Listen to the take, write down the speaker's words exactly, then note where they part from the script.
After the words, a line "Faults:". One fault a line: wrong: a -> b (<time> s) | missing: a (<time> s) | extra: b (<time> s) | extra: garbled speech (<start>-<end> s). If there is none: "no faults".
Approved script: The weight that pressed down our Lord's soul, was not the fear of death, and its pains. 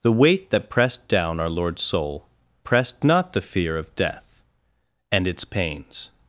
The weight that pressed down our Lord's soul, pressed not the fear of death, and its pains.
Faults:
wrong: was -> pressed (2.7 s)